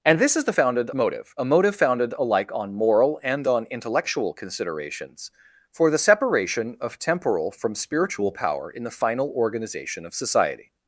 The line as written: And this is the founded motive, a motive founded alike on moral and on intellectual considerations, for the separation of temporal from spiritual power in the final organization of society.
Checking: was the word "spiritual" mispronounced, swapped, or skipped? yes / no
no